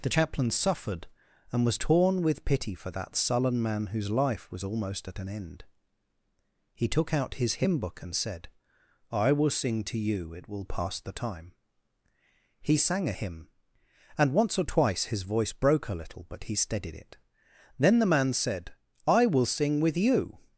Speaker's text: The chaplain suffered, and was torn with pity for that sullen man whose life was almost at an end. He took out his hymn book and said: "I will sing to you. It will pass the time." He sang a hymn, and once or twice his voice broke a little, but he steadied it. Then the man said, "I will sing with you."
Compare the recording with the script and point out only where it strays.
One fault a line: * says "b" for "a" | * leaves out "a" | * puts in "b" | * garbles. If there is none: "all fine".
all fine